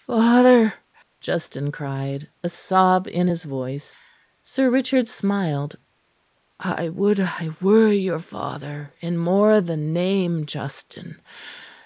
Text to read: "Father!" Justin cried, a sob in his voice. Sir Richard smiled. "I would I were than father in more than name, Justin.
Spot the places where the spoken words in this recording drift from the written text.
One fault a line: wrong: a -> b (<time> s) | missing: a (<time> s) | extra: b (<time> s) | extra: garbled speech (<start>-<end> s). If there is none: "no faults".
wrong: than -> your (7.9 s)